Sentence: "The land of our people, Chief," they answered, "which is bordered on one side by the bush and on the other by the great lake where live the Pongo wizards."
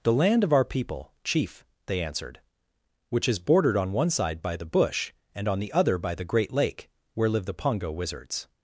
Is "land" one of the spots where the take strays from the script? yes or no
no